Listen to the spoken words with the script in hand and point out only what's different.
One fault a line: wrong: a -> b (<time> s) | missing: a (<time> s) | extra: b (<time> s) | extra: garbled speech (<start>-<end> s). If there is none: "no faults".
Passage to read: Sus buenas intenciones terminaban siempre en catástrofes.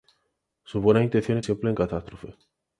missing: terminaban (1.4 s)